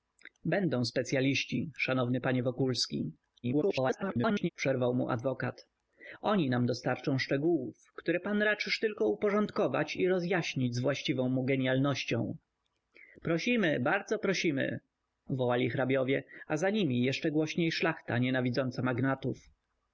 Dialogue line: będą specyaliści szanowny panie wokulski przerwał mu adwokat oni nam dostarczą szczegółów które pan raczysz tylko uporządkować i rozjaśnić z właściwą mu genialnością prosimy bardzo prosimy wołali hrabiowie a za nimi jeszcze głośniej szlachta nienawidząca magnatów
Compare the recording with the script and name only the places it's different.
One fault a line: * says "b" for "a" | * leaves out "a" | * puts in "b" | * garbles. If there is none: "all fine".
* garbles